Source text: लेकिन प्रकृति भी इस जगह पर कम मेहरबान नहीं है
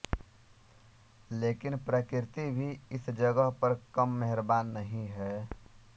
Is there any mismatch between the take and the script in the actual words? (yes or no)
no